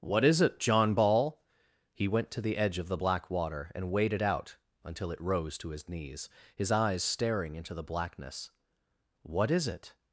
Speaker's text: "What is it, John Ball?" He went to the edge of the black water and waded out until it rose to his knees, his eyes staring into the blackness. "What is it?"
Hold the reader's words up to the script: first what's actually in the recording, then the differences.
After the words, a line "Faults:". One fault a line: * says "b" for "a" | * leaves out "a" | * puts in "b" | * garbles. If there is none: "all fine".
"What is it, John Ball?" He went to the edge of the black water and waded out until it rose to his knees, his eyes staring into the blackness. "What is it?"
Faults:
all fine